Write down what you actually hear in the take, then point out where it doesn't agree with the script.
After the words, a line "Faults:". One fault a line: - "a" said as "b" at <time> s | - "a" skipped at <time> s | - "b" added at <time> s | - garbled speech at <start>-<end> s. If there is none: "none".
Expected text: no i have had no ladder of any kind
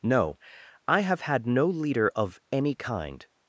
no i have had no leader of any kind
Faults:
- "ladder" said as "leader" at 1.7 s